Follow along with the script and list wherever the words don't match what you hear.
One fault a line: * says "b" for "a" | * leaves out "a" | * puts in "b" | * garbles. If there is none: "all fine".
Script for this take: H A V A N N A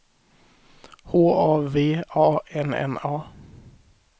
all fine